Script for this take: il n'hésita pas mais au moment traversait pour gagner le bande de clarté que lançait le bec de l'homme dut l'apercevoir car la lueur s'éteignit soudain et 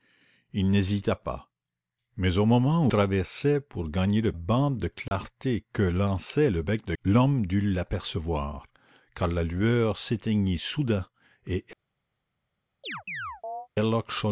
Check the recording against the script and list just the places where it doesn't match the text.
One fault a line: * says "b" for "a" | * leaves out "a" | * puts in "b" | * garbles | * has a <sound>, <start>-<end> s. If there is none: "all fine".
* has a dropout, 5.1-5.1 s
* has a chirp, 12.8-13.7 s